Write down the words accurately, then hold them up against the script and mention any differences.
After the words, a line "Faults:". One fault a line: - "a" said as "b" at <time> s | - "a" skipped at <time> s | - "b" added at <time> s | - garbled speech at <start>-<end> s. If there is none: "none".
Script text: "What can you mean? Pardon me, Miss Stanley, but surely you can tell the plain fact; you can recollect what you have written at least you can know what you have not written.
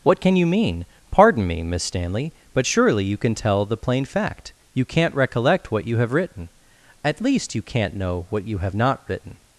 "What can you mean? Pardon me, Miss Stanley, but surely you can tell the plain fact; you can't recollect what you have written at least you can't know what you have not written.
Faults:
- "can" said as "can't" at 4.8 s
- "can" said as "can't" at 7.6 s